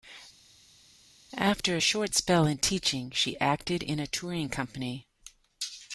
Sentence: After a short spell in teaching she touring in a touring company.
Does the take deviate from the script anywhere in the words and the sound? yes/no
yes